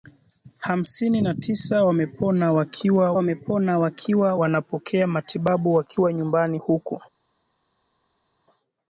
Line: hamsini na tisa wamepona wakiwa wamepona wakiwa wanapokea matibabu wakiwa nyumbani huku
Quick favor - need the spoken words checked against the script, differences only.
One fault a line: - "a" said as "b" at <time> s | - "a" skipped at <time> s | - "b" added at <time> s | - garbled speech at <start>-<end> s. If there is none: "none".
none